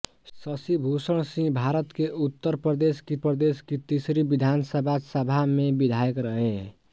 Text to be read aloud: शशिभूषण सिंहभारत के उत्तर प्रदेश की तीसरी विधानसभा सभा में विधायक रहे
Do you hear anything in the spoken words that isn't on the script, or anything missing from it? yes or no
yes